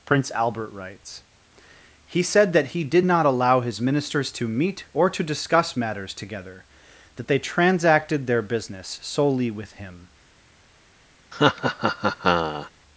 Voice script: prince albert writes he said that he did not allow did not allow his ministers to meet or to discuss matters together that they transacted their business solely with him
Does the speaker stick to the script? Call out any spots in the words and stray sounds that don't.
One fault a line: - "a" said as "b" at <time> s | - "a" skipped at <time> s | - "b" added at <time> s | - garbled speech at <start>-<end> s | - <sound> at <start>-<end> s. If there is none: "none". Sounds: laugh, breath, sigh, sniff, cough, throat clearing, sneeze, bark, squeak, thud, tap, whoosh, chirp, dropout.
- "did not allow" skipped at 3.6 s
- laugh at 11.3-12.7 s